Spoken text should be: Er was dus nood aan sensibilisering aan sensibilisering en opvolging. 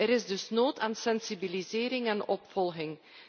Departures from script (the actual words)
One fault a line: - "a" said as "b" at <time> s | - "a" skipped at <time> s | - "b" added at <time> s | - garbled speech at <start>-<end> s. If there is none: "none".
- "was" said as "is" at 0.1 s
- "aan sensibilisering" skipped at 2.1 s